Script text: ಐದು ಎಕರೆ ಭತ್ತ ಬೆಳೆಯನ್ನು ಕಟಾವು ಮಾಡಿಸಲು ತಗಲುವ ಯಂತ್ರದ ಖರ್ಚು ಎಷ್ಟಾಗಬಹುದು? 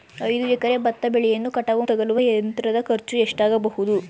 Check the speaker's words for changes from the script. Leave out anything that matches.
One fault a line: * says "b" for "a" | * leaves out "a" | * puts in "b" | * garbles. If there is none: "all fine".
* leaves out "ಮಾಡಿಸಲು"